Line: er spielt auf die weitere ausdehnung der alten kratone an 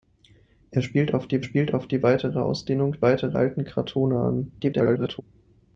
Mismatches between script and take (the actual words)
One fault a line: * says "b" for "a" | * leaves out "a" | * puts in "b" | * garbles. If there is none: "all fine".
* puts in "spielt auf die"
* says "weitere" for "der"
* garbles